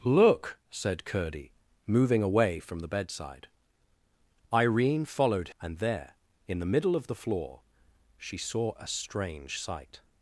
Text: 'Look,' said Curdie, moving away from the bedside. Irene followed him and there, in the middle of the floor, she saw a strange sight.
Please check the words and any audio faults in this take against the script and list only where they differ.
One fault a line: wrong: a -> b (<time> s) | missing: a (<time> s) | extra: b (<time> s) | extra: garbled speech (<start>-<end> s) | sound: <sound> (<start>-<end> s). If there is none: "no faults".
missing: him (5.5 s)